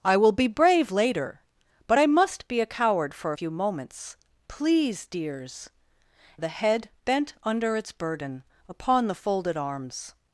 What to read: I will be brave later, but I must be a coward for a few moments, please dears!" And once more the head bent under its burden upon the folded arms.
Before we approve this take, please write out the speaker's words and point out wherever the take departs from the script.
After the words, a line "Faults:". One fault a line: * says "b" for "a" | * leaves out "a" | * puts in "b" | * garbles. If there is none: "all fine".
I will be brave later, but I must be a coward for few moments, please dears!" The head bent under its burden upon the folded arms.
Faults:
* leaves out "a"
* leaves out "And once more"